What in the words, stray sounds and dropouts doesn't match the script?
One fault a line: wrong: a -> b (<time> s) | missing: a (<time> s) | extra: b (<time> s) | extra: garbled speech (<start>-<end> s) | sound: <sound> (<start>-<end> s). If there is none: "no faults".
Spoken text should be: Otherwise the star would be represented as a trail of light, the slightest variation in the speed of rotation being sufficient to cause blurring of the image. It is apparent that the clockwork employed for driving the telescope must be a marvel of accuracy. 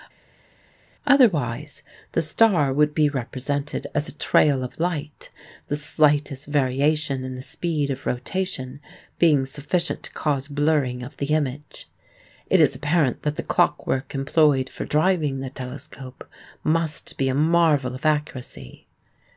no faults